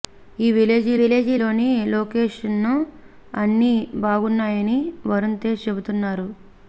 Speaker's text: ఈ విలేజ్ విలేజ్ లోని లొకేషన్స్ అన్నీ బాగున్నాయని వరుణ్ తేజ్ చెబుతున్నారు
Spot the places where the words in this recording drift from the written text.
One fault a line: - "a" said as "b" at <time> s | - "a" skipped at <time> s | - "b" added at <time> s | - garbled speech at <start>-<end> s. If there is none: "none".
none